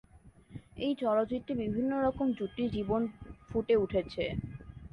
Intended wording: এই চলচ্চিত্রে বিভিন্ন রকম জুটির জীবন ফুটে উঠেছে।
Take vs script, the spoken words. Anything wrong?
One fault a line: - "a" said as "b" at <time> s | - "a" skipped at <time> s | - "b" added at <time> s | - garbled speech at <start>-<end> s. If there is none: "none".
none